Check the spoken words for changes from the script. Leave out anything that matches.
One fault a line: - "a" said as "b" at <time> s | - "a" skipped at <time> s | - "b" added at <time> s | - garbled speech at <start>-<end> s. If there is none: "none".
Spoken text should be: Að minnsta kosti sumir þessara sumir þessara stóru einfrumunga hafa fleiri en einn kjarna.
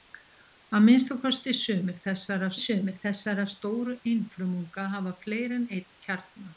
none